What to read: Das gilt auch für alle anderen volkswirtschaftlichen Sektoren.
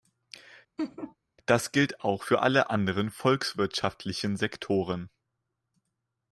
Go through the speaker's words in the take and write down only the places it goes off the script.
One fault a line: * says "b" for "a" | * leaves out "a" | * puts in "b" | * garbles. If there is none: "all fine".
all fine